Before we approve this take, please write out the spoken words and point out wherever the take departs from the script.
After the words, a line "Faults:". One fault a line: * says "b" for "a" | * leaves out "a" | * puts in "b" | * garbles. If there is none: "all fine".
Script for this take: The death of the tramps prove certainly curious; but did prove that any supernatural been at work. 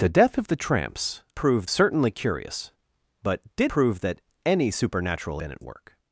The death of the tramps prove certainly curious; but did prove that any supernatural been at work.
Faults:
all fine